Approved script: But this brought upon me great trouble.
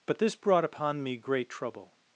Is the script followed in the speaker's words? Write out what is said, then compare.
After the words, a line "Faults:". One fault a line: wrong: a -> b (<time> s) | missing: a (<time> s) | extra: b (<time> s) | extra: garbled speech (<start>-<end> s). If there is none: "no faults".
But this brought upon me great trouble.
Faults:
no faults